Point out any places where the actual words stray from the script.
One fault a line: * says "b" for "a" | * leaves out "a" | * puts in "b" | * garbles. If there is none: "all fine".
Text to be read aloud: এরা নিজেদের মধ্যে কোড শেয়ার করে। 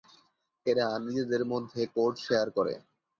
all fine